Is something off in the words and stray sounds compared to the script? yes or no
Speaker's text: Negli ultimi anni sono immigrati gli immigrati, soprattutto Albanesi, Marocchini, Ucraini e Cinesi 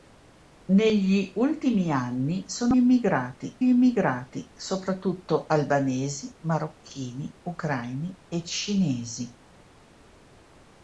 no